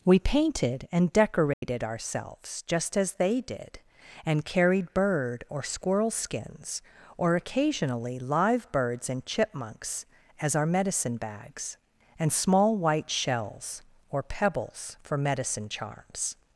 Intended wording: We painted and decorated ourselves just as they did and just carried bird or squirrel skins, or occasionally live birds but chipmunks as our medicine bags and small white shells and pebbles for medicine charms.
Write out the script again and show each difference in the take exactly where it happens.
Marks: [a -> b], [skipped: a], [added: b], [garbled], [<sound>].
We painted and decorated [dropout] ourselves just as they did and [skipped: just] carried bird or squirrel skins, or occasionally live birds [but -> and] chipmunks as our medicine bags and small white shells [and -> or] pebbles for medicine charms.